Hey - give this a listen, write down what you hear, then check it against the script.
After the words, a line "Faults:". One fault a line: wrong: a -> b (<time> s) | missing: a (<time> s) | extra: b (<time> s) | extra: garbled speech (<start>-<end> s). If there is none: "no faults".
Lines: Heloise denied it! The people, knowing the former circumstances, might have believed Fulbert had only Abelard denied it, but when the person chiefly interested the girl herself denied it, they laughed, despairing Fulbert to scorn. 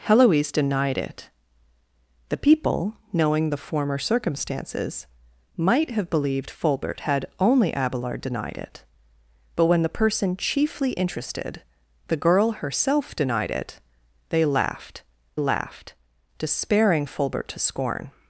Heloise denied it! The people, knowing the former circumstances, might have believed Fulbert had only Abelard denied it, but when the person chiefly interested the girl herself denied it, they laughed laughed, despairing Fulbert to scorn.
Faults:
extra: laughed (15.4 s)